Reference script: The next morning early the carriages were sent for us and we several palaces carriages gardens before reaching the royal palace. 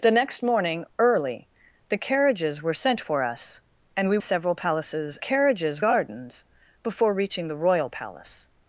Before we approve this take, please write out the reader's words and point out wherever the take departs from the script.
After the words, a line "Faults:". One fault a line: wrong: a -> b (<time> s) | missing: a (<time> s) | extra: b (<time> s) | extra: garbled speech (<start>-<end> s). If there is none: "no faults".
The next morning early the carriages were sent for us and we several palaces carriages gardens before reaching the royal palace.
Faults:
no faults